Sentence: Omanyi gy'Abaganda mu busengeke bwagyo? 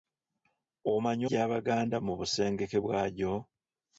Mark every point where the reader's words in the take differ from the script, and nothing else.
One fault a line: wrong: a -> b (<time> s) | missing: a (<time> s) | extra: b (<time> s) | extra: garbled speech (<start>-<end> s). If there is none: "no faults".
no faults